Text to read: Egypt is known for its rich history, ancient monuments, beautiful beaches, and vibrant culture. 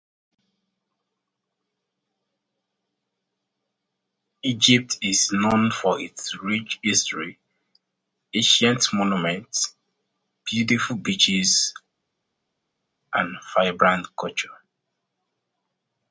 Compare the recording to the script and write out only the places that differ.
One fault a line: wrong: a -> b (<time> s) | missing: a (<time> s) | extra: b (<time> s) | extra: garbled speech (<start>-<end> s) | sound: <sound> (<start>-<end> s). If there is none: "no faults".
no faults